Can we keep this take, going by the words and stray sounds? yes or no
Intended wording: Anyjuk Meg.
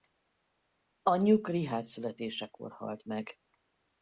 no